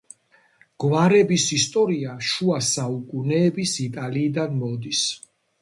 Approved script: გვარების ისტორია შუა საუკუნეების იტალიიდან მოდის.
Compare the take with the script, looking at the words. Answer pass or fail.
pass